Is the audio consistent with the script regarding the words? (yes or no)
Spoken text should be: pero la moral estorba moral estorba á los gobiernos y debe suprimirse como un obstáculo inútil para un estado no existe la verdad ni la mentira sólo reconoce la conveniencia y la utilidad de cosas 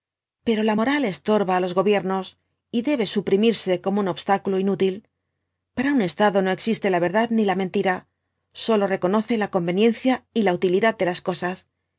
no